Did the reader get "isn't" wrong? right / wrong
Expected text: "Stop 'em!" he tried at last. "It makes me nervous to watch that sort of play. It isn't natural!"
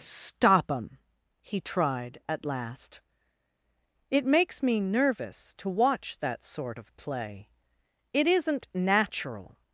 right